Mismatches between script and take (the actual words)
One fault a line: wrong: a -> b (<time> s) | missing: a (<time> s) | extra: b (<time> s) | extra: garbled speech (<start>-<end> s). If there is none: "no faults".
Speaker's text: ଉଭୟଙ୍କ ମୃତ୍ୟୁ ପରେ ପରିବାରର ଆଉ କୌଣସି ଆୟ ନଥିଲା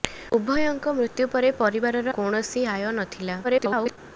missing: ଆଉ (2.1 s)
extra: garbled speech (3.4-4.0 s)